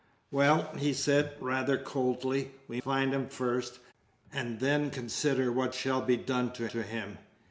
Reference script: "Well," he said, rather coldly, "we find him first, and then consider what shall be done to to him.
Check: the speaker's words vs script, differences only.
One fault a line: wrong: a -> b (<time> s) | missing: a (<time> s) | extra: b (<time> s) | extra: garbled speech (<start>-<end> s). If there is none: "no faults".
no faults